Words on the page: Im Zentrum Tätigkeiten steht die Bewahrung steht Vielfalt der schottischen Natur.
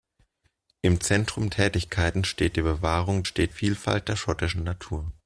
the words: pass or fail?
pass